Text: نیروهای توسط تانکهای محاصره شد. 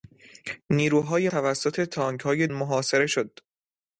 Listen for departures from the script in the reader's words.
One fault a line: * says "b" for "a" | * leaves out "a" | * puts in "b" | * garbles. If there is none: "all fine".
all fine